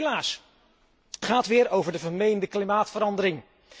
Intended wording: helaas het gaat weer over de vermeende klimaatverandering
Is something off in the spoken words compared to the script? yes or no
yes